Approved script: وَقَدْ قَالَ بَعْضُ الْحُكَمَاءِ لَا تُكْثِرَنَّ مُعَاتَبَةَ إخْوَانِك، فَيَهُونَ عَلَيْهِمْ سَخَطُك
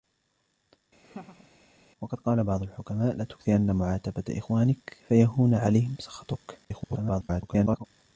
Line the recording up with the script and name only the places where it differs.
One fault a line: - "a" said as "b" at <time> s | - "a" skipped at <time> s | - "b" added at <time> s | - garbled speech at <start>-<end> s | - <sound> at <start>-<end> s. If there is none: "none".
- laugh at 1.0-1.5 s
- garbled speech at 6.6-7.9 s